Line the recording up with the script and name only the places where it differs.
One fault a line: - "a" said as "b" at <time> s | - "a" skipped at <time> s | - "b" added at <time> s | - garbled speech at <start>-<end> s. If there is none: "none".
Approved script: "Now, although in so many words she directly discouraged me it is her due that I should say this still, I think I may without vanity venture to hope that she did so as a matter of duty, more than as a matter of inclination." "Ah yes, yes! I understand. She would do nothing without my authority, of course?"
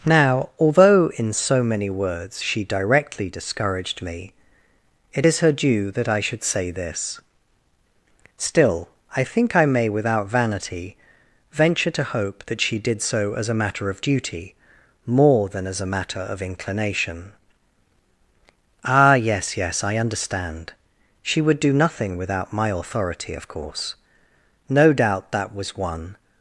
- "No doubt that was one" added at 24.7 s